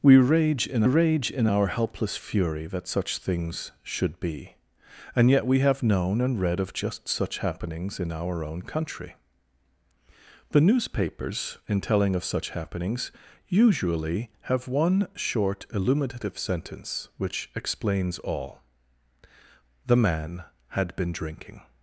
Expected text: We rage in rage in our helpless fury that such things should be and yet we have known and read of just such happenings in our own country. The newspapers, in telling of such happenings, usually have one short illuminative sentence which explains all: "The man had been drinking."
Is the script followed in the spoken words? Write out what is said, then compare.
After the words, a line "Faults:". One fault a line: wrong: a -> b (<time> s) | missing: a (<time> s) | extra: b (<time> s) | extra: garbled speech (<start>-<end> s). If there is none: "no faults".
We rage in rage in our helpless fury that such things should be and yet we have known and read of just such happenings in our own country. The newspapers, in telling of such happenings, usually have one short illuminative sentence which explains all: "The man had been drinking."
Faults:
no faults